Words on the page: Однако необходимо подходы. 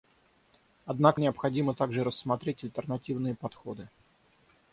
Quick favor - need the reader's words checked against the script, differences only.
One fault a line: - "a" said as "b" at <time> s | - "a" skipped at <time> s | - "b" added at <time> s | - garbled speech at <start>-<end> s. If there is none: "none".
- "также рассмотреть альтернативные" added at 1.7 s